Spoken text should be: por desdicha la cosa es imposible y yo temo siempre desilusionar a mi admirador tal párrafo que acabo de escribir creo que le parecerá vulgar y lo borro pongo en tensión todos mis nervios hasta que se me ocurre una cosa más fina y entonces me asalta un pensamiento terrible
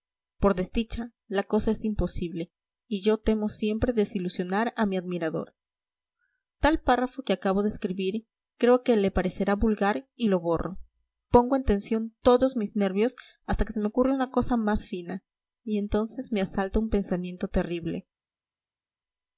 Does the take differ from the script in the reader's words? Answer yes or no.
no